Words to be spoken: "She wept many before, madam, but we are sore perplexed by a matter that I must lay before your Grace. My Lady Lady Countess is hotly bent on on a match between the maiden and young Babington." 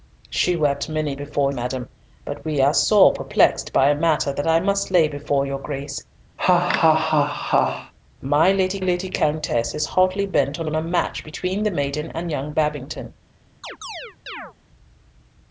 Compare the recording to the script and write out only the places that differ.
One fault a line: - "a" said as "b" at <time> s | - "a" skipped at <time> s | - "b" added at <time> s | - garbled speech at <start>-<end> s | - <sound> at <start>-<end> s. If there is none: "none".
- laugh at 6.4-7.9 s
- chirp at 13.6-14.5 s